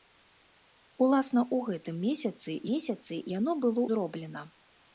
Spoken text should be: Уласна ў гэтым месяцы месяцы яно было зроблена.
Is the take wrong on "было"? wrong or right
right